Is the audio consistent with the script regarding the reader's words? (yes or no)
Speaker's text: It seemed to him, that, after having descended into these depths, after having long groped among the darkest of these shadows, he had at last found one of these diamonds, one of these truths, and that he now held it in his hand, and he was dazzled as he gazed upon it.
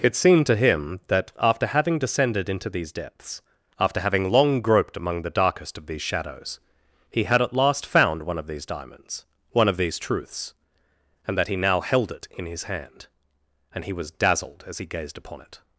yes